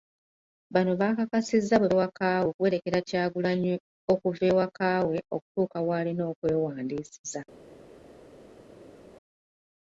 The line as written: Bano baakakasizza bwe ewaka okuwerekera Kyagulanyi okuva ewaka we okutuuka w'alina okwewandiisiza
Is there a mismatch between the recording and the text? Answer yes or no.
no